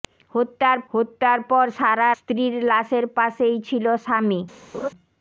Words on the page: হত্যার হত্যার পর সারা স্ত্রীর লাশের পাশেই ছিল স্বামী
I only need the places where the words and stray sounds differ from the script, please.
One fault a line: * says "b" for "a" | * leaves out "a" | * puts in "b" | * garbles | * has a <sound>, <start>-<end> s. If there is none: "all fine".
* has a laugh, 4.7-4.9 s